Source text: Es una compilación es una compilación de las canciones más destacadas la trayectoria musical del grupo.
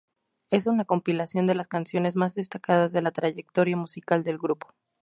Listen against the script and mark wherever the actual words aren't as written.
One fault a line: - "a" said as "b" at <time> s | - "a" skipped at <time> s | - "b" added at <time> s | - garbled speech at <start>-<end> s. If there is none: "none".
- "es una compilación" skipped at 1.4 s
- "de" added at 2.9 s